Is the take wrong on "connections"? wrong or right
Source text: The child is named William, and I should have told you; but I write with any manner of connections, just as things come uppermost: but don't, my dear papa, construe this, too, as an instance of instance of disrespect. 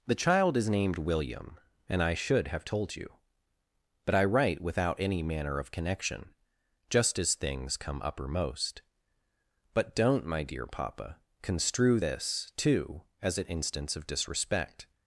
wrong